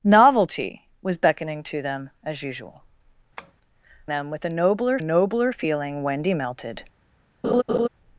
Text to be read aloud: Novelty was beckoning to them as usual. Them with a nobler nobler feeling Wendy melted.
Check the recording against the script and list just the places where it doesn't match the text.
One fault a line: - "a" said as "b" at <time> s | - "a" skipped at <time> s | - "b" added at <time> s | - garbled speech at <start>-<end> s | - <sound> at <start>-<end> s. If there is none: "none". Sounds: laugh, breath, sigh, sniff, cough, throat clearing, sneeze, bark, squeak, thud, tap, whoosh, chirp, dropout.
- tap at 3.4-3.5 s
- laugh at 7.4-7.9 s